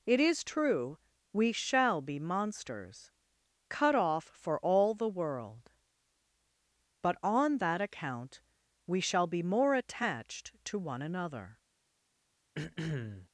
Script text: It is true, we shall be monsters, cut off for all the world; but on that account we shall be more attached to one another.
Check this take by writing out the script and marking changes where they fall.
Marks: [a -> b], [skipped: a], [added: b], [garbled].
It is true, we shall be monsters, cut off for all the world; but on that account we shall be more attached to one another.